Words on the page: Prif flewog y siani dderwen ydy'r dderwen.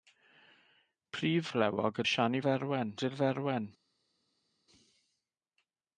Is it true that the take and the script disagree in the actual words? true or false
false